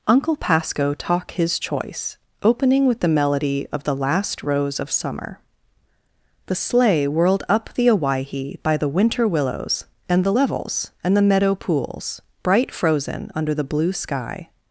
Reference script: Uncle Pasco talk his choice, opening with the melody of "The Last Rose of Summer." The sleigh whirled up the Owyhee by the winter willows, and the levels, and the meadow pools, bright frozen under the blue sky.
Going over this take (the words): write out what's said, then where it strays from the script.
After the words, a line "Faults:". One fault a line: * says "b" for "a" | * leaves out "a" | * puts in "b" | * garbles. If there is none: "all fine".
Uncle Pasco talk his choice, opening with the melody of "The Last Rose of Summer." The sleigh whirled up the Owyhee by the winter willows, and the levels, and the meadow pools, bright frozen under the blue sky.
Faults:
all fine